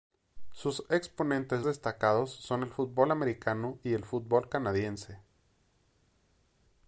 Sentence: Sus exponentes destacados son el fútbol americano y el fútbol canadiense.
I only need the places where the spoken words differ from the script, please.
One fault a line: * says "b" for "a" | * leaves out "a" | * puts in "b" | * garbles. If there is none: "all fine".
all fine